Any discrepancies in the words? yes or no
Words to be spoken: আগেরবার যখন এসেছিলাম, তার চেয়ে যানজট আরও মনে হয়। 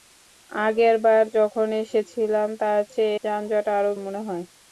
no